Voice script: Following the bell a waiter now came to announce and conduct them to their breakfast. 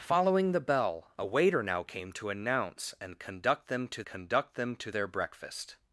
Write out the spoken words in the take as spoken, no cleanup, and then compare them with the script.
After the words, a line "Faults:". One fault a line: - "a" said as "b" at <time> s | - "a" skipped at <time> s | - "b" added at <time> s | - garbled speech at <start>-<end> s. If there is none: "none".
Following the bell a waiter now came to announce and conduct them to conduct them to their breakfast.
Faults:
- "conduct them to" added at 4.0 s